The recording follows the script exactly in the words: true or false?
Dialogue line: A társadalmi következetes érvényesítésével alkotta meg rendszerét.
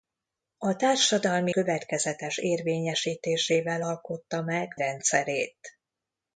true